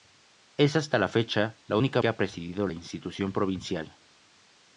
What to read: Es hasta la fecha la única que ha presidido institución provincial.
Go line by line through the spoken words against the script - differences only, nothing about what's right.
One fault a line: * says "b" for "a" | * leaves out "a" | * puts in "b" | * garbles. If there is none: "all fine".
all fine